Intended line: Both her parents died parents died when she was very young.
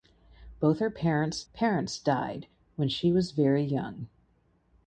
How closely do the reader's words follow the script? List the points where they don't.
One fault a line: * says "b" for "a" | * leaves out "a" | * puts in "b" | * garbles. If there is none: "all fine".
* leaves out "died"